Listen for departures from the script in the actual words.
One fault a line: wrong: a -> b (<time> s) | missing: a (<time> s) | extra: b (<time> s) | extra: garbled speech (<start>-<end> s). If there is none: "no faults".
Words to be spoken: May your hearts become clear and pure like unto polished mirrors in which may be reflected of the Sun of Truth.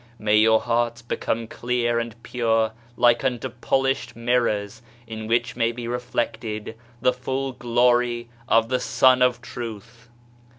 extra: the full glory (7.0 s)